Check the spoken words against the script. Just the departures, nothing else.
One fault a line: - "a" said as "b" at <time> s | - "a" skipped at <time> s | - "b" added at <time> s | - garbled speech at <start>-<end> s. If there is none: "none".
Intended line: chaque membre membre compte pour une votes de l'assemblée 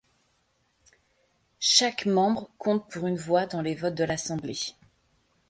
- "membre" skipped at 2.5 s
- "voix dans les" added at 3.2 s